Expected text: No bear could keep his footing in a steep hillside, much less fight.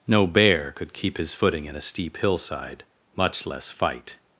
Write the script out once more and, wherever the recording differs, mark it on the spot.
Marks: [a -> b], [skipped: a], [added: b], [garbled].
No bear could keep his footing in a steep hillside, much less fight.